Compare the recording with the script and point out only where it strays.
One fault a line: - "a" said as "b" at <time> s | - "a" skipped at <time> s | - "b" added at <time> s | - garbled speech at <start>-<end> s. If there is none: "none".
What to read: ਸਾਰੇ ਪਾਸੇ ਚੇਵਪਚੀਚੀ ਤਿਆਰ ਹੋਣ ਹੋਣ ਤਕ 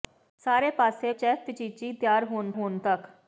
none